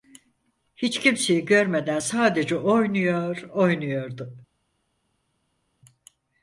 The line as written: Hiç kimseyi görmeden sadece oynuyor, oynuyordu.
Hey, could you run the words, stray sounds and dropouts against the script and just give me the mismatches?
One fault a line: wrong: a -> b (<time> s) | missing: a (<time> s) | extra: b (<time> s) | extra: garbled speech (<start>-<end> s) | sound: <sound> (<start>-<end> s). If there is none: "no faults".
no faults